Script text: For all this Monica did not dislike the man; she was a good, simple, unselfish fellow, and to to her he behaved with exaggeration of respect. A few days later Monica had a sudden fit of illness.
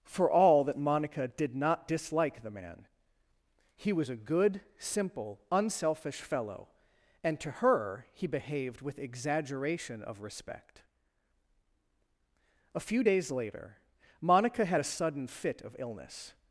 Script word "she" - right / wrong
wrong